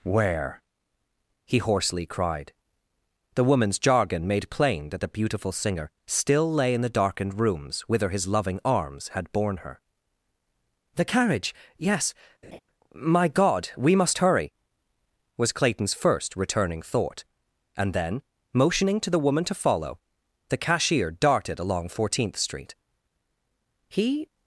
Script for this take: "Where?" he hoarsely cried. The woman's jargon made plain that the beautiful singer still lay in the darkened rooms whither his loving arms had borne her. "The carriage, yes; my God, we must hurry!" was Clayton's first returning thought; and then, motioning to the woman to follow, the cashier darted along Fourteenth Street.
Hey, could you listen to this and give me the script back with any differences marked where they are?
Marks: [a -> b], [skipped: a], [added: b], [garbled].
"Where?" he hoarsely cried. The woman's jargon made plain that the beautiful singer still lay in the darkened rooms whither his loving arms had borne her. "The carriage, yes; my God, we must hurry!" was Clayton's first returning thought; and then, motioning to the woman to follow, the cashier darted along Fourteenth Street. [added: He]